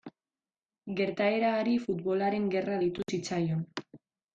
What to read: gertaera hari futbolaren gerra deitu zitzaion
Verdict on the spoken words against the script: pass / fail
pass